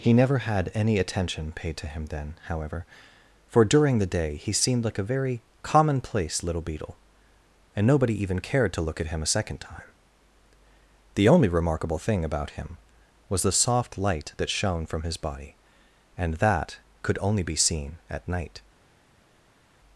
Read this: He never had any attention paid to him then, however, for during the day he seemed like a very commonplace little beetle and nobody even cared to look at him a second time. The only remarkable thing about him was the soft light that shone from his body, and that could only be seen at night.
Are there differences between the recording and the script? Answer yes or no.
no